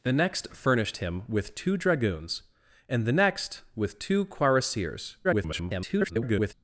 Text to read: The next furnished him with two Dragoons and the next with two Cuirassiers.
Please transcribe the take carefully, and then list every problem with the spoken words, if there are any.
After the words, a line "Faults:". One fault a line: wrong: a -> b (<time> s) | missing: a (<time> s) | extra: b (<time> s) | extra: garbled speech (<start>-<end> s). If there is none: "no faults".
The next furnished him with two Dragoons and the next with two Cuirassiers. [garbled]
Faults:
extra: garbled speech (5.2-6.5 s)